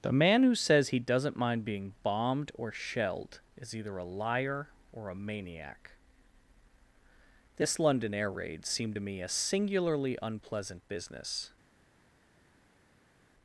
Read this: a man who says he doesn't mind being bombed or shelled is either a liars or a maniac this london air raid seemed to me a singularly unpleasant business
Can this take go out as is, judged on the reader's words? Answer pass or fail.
fail